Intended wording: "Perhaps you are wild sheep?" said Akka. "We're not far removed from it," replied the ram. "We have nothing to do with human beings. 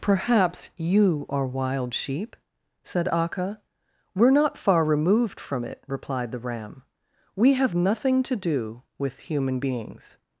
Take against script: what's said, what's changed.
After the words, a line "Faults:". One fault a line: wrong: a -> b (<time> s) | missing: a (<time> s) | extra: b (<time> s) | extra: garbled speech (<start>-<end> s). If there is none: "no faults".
"Perhaps you are wild sheep?" said Akka. "We're not far removed from it," replied the ram. "We have nothing to do with human beings.
Faults:
no faults